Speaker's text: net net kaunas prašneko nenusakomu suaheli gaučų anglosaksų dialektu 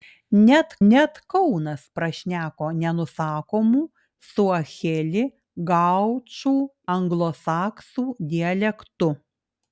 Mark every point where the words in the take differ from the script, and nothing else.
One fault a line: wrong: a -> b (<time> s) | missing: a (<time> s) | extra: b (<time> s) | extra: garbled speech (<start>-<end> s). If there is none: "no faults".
no faults